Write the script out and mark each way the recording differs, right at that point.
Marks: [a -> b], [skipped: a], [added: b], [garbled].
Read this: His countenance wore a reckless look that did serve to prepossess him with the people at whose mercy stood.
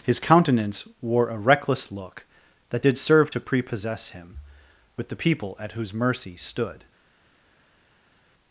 His countenance wore a reckless look that did serve to prepossess him with the people at whose mercy stood.